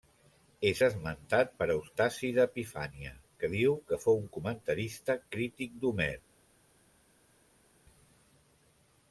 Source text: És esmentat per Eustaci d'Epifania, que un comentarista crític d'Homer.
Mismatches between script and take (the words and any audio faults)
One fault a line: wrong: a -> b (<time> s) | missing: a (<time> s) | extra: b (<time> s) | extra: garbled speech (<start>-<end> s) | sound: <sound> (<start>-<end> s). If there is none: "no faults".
extra: diu que fou (3.6 s)